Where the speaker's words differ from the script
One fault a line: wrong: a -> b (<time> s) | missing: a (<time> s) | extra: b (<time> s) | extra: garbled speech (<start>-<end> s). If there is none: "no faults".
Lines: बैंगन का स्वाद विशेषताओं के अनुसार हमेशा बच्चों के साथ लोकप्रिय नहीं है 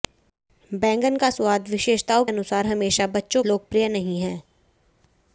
missing: के (2.2 s)
missing: के साथ (3.4 s)